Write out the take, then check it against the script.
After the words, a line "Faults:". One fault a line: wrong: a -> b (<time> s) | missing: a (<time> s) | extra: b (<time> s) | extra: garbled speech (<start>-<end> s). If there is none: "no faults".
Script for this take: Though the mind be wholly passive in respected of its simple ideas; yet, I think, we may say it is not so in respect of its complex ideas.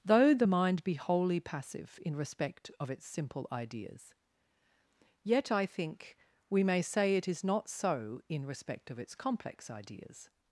Though the mind be wholly passive in respect of its simple ideas; yet, I think, we may say it is not so in respect of its complex ideas.
Faults:
wrong: respected -> respect (2.1 s)